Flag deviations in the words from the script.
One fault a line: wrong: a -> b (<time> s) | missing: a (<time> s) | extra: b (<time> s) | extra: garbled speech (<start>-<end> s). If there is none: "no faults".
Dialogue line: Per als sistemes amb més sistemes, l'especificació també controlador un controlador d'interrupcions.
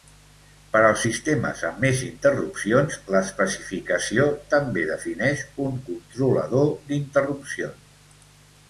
wrong: sistemes -> interrupcions (2.1 s)
wrong: controlador -> defineix (4.9 s)